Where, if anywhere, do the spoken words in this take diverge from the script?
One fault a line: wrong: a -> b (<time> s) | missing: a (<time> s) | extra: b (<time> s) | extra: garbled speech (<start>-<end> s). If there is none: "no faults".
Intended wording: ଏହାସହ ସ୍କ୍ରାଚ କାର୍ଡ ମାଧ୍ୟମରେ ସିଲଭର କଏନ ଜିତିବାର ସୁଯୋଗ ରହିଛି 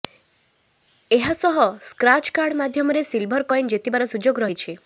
no faults